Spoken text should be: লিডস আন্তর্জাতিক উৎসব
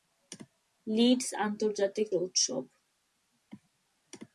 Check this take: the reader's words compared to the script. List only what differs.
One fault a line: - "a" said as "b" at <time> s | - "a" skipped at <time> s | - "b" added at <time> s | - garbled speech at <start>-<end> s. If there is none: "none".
none